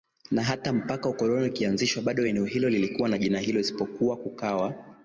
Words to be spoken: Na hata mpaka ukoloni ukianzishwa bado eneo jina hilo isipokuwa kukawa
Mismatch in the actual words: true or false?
true